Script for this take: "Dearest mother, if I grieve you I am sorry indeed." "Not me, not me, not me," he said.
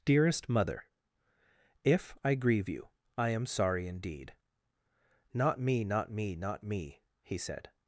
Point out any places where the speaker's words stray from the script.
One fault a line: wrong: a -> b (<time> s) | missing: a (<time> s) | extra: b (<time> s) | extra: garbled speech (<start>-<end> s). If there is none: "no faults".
no faults